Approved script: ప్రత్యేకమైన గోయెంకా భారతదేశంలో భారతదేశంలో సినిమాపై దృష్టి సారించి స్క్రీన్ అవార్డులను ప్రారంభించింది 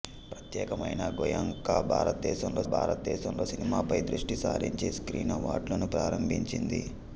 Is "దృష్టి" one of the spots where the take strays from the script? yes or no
no